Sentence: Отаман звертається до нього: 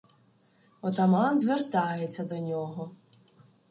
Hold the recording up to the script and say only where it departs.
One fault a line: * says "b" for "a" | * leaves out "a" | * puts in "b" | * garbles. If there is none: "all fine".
all fine